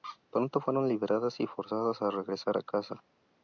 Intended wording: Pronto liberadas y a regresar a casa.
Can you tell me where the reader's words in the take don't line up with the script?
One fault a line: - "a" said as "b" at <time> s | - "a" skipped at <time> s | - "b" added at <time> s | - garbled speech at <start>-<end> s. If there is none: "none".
- "fueron" added at 0.6 s
- "forzadas" added at 1.5 s